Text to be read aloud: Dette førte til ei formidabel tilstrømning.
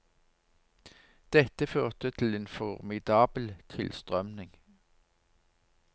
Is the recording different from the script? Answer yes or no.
yes